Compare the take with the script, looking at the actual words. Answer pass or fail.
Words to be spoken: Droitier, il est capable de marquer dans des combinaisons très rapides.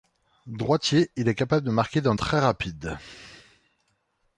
fail